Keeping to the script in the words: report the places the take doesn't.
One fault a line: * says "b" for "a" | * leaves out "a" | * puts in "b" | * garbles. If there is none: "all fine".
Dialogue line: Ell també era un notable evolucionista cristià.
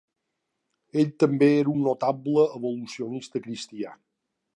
all fine